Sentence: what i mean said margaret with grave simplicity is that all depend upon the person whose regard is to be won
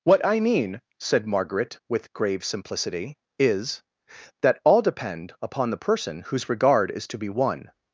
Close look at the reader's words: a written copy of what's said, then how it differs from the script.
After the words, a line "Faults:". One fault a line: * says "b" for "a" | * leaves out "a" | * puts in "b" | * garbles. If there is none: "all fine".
what i mean said margaret with grave simplicity is that all depend upon the person whose regard is to be won
Faults:
all fine